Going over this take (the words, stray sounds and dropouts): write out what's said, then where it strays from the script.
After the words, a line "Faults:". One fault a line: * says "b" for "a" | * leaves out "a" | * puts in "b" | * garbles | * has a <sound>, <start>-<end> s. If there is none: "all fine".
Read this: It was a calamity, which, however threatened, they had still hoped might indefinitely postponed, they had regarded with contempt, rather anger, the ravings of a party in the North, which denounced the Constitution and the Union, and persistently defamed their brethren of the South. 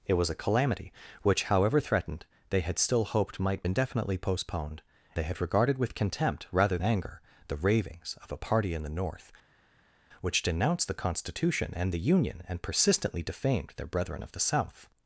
It was a calamity, which, however threatened, they had still hoped might indefinitely postponed, they had regarded with contempt, rather anger, the ravings of a party in the North, which denounced the Constitution and the Union, and persistently defamed their brethren of the South.
Faults:
all fine